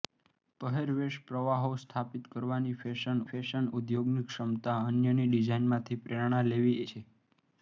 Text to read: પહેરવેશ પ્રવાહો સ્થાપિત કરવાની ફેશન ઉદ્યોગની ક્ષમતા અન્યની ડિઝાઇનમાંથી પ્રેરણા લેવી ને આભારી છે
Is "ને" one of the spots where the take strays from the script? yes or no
yes